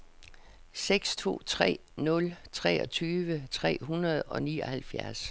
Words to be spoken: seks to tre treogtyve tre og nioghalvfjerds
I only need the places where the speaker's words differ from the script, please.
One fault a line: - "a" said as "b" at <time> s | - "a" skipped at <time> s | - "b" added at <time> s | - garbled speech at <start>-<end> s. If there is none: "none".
- "nul" added at 2.0 s
- "hundrede" added at 3.8 s